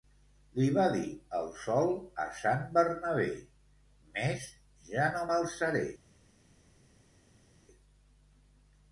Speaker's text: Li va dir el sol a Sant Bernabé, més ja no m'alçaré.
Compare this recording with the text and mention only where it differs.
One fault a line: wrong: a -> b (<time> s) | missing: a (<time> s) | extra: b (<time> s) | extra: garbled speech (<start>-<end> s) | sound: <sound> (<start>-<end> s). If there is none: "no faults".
no faults